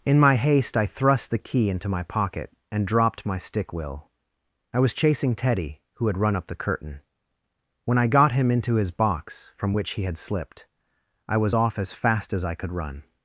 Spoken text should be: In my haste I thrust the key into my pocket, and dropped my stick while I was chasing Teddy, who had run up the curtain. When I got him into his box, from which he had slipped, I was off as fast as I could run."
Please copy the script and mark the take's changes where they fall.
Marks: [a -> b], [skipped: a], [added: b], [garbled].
In my haste I thrust the key into my pocket, and dropped my stick [while -> will] I was chasing Teddy, who had run up the curtain. When I got him into his box, from which he had slipped, I was off as fast as I could run."